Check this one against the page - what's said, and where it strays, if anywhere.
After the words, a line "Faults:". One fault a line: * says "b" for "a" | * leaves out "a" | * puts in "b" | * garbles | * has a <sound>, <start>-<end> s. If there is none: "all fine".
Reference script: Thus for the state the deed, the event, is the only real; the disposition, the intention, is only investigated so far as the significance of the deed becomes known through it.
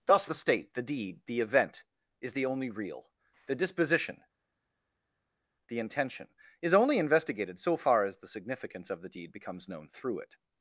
Thus the state the deed, the event, is the only real; the disposition, the intention, is only investigated so far as the significance of the deed becomes known through it.
Faults:
* leaves out "for"